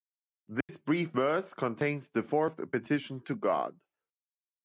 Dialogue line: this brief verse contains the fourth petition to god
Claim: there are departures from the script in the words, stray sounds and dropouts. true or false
true